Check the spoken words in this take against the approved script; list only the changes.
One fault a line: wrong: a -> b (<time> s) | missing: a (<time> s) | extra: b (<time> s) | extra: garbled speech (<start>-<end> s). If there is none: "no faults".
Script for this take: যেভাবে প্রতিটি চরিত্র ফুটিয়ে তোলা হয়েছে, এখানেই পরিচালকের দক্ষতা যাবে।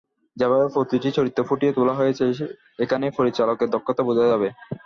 extra: বোঝা (4.1 s)